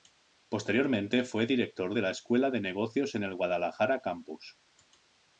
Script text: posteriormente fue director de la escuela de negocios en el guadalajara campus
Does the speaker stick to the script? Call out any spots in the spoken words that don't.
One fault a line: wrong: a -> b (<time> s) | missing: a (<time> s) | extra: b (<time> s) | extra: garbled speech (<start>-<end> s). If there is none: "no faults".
no faults